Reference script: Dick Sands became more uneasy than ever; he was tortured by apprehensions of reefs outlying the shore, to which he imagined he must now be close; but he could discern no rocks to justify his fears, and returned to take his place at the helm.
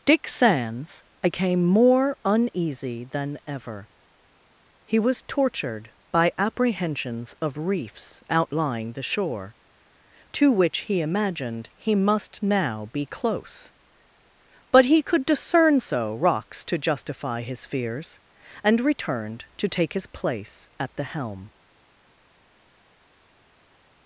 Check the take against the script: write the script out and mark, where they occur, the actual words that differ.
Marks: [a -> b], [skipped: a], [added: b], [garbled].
Dick Sands became more uneasy than ever; he was tortured by apprehensions of reefs outlying the shore, to which he imagined he must now be close; but he could discern [no -> so] rocks to justify his fears, and returned to take his place at the helm.